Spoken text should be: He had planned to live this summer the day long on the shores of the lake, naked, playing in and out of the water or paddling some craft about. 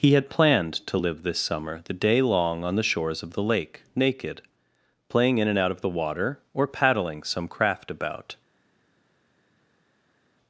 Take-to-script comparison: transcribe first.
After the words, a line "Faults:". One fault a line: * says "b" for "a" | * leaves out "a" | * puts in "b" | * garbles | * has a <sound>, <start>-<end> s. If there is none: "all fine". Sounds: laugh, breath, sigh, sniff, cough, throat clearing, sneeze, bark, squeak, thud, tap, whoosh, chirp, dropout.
He had planned to live this summer the day long on the shores of the lake, naked, playing in and out of the water or paddling some craft about.
Faults:
all fine